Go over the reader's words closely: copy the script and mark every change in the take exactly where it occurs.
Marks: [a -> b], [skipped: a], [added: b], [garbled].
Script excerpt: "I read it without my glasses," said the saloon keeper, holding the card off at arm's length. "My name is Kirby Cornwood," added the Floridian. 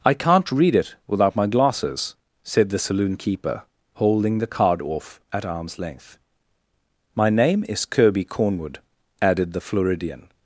"I [added: can't] read it without my glasses," said the saloon keeper, holding the card off at arm's length. "My name is Kirby Cornwood," added the Floridian.